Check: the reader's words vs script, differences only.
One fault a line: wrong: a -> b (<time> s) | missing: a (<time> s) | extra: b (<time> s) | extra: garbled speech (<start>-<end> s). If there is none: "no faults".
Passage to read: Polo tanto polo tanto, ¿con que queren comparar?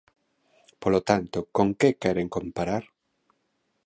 missing: polo tanto (1.4 s)